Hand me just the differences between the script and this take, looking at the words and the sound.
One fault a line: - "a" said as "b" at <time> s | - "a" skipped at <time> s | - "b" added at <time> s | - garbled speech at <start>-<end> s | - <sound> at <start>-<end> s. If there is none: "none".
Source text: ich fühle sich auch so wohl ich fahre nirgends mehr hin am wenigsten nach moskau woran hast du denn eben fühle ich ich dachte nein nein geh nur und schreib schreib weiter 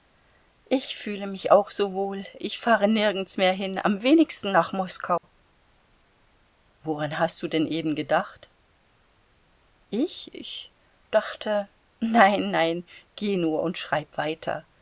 - "sich" said as "mich" at 1.3 s
- dropout at 5.2-5.2 s
- "fühle" said as "gedacht" at 8.0 s
- "schreib" skipped at 14.2 s